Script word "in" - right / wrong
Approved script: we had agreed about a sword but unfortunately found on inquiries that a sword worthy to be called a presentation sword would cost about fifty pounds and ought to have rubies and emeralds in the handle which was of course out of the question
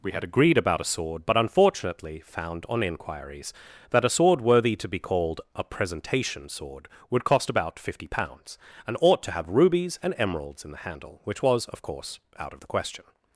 right